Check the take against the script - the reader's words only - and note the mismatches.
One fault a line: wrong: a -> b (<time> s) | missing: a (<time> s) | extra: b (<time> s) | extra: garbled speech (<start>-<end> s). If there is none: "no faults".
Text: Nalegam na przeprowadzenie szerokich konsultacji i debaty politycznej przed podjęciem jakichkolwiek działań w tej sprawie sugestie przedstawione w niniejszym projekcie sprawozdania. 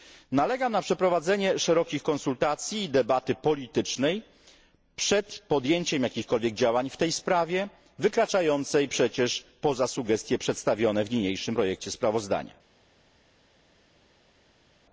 extra: wykraczającej przecież poza (8.0 s)